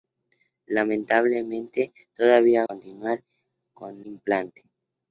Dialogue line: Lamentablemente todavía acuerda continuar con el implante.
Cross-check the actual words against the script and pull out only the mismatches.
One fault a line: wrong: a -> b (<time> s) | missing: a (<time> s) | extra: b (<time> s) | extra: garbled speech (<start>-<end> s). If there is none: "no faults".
missing: acuerda (2.6 s)
missing: el (4.0 s)